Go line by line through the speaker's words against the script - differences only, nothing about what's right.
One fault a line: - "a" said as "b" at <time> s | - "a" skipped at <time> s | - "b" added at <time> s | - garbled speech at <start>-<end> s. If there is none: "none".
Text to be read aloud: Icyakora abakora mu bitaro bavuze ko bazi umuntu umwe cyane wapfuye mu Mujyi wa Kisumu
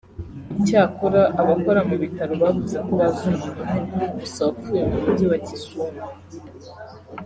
- "cyane" said as "gusa" at 4.2 s